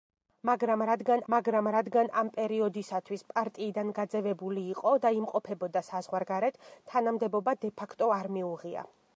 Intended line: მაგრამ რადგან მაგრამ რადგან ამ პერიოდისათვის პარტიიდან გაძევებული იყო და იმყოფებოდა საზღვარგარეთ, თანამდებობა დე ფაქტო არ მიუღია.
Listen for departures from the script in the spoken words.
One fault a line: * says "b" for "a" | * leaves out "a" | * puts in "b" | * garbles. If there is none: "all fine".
all fine